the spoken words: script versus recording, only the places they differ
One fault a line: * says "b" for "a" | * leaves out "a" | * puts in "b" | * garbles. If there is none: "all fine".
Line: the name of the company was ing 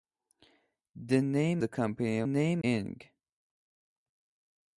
* leaves out "of"
* says "name" for "was"